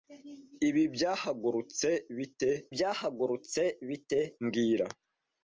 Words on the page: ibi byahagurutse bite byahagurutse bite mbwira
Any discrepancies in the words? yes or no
no